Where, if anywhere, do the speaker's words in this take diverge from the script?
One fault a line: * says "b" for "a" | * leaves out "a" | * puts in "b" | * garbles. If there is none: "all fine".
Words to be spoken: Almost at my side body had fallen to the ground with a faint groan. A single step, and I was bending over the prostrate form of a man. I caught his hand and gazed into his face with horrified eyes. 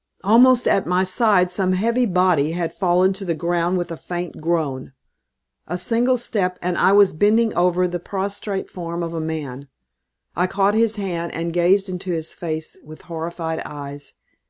* puts in "some heavy"